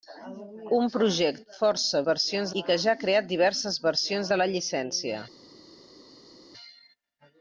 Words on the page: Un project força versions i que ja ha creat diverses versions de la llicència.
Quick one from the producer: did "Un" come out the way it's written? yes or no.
yes